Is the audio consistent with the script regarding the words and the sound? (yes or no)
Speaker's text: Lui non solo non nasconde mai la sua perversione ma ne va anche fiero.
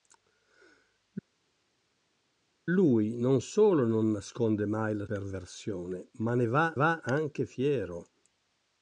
no